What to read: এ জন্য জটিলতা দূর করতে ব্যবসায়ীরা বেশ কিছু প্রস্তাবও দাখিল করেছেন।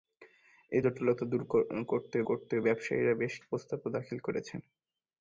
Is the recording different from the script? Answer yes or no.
yes